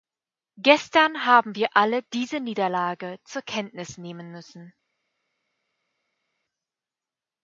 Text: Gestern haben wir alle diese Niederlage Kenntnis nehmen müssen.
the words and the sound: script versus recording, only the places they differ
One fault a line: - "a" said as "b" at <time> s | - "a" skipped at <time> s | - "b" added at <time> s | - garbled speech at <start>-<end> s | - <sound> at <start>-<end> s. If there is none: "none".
- "zur" added at 3.3 s